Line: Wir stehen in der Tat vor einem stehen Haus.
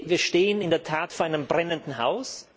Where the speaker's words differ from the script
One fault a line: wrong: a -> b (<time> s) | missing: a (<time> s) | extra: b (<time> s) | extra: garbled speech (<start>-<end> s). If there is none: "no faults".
wrong: stehen -> brennenden (1.5 s)